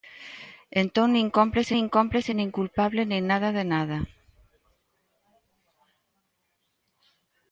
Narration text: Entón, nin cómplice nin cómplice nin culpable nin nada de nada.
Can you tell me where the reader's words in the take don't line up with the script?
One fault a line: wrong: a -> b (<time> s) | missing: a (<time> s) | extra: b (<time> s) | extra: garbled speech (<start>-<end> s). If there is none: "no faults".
no faults